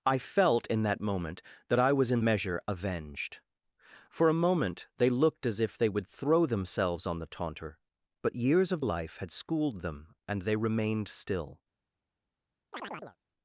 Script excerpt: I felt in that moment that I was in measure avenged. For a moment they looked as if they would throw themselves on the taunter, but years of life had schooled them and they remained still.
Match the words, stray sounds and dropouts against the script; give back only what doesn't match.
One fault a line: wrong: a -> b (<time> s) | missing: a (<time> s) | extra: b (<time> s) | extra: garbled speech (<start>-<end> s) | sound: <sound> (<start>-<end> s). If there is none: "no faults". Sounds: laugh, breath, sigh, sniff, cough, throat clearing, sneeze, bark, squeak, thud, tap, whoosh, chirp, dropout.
sound: chirp (12.7-13.2 s)